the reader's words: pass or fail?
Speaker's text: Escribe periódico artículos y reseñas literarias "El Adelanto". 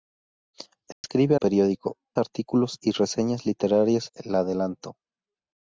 pass